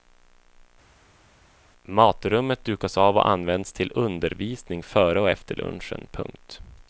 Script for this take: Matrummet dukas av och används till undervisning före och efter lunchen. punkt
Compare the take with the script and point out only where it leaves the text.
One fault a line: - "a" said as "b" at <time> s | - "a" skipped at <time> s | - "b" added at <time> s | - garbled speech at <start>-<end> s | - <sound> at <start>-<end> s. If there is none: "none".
none